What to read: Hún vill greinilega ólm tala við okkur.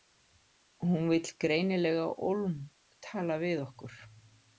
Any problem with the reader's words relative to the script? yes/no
no